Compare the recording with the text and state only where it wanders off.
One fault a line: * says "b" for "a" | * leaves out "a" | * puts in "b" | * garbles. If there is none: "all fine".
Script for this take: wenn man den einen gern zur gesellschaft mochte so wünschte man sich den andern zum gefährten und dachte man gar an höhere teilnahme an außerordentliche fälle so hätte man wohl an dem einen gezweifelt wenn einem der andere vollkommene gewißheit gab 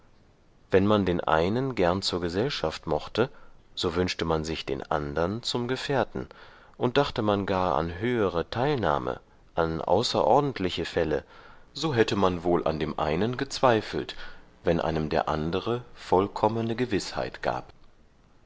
all fine